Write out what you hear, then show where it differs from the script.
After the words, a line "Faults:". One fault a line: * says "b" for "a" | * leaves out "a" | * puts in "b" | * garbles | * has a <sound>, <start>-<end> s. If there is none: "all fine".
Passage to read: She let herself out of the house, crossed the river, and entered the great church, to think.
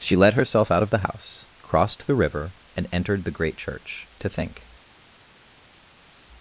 She let herself out of the house, crossed the river, and entered the great church, to think.
Faults:
all fine